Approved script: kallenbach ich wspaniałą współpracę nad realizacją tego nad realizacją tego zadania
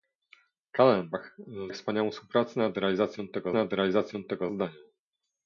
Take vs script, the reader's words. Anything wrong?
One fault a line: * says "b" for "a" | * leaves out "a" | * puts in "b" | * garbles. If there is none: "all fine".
all fine